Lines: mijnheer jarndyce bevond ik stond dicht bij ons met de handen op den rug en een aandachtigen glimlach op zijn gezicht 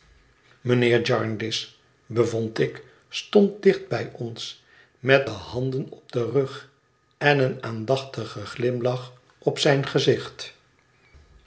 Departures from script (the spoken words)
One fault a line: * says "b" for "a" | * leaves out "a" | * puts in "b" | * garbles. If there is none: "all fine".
all fine